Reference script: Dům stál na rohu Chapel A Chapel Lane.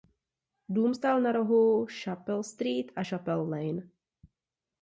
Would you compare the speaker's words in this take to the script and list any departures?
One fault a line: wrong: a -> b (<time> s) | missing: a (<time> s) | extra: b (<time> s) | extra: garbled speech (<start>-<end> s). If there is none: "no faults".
extra: Street (2.4 s)